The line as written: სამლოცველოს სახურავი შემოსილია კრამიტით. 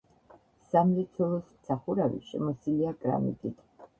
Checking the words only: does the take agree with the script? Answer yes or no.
yes